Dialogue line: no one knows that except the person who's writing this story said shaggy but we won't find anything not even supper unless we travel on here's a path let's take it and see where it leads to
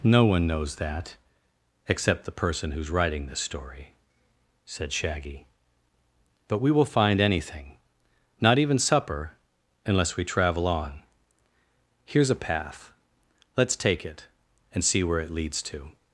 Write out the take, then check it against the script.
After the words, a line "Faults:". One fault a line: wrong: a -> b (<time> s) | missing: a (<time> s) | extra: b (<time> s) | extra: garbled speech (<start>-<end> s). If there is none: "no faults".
no one knows that except the person who's writing this story said shaggy but we will find anything not even supper unless we travel on here's a path let's take it and see where it leads to
Faults:
wrong: won't -> will (6.7 s)